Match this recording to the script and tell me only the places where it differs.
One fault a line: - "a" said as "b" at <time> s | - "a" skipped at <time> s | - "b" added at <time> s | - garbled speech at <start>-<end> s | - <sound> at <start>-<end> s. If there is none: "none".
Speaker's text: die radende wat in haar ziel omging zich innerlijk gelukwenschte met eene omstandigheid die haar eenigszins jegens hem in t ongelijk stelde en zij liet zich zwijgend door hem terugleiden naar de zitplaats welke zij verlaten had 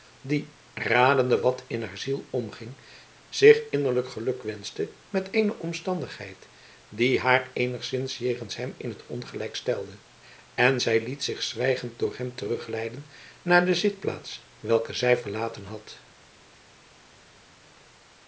none